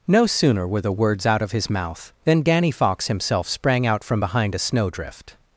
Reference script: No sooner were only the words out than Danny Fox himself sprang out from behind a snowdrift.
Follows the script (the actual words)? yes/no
no